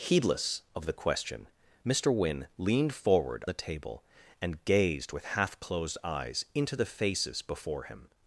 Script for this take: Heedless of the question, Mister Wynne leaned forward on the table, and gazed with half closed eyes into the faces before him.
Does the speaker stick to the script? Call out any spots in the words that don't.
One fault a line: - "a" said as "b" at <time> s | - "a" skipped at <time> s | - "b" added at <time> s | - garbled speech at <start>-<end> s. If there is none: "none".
- "on" skipped at 3.5 s